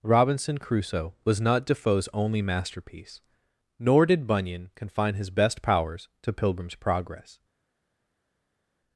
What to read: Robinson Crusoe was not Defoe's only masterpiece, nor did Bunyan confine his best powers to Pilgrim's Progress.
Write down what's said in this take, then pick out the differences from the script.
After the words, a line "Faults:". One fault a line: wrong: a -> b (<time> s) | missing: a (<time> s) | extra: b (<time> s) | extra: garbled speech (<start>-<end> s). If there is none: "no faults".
Robinson Crusoe was not Defoe's only masterpiece, nor did Bunyan confine his best powers to Pilgrim's Progress.
Faults:
no faults